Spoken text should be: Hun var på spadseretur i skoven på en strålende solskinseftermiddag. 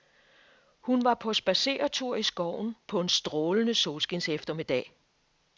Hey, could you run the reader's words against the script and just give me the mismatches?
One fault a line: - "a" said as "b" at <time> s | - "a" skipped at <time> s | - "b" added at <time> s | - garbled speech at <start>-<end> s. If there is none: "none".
none